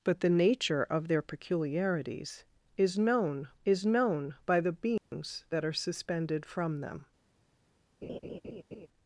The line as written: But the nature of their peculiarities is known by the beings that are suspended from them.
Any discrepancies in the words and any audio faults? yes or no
yes